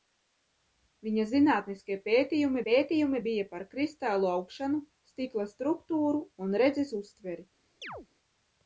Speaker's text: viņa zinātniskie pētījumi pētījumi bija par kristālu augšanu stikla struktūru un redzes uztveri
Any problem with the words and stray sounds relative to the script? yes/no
yes